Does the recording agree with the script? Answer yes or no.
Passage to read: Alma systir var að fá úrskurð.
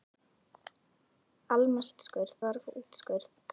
no